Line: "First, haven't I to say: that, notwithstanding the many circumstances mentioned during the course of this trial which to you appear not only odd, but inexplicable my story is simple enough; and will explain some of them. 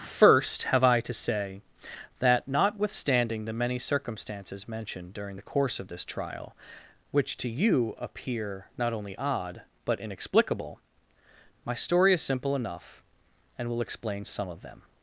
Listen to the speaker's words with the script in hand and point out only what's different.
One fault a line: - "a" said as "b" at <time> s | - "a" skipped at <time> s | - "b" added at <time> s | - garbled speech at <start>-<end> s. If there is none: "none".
- "haven't" said as "have" at 0.6 s